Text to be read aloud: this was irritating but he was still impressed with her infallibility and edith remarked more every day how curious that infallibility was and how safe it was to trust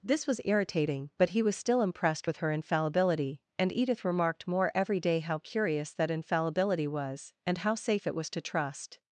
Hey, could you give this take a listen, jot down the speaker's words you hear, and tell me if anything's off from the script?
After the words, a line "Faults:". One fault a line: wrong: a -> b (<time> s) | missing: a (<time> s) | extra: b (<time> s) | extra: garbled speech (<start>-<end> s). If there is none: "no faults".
this was irritating but he was still impressed with her infallibility and edith remarked more every day how curious that infallibility was and how safe it was to trust
Faults:
no faults